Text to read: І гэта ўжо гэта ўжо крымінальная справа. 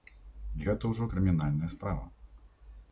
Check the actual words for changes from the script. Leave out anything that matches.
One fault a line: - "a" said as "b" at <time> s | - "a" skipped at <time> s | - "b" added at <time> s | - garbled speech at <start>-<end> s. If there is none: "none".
- "гэта ўжо" skipped at 1.1 s